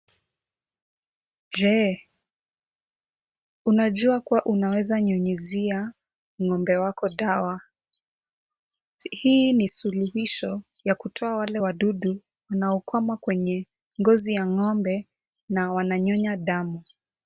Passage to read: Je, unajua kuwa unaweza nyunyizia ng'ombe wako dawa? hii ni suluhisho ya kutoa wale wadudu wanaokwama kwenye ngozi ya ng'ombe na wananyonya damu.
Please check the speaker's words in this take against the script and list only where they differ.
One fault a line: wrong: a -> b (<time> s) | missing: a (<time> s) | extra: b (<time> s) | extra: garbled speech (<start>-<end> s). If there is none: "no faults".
no faults